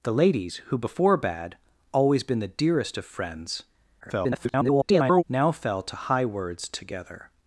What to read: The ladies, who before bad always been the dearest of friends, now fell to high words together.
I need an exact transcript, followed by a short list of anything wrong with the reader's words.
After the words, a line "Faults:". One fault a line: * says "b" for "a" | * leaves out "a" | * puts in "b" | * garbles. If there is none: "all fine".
The ladies, who before bad always been the dearest of friends, [garbled] now fell to high words together.
Faults:
* garbles